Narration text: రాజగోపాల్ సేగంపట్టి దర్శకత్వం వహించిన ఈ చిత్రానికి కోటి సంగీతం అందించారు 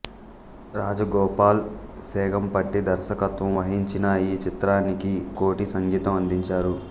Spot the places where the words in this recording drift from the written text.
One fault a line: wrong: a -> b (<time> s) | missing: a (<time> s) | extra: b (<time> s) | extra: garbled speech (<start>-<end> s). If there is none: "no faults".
no faults